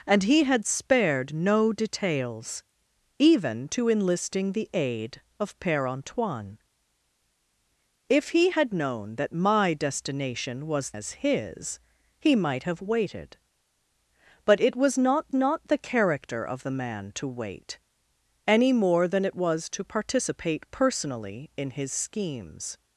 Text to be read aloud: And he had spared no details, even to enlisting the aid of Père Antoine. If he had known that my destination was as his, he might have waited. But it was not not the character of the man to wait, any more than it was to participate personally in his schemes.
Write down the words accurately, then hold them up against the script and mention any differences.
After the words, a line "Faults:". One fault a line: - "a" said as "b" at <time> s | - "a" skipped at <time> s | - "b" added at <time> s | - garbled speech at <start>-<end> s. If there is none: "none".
And he had spared no details, even to enlisting the aid of Père Antoine. If he had known that my destination was as his, he might have waited. But it was not not the character of the man to wait, any more than it was to participate personally in his schemes.
Faults:
none